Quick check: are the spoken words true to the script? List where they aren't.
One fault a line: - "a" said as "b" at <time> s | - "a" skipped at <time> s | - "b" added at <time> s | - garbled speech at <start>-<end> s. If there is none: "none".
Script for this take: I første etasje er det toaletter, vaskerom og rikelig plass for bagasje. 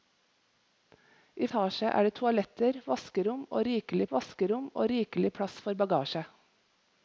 - "første" skipped at 1.5 s
- "vaskerom og rikelig" added at 4.1 s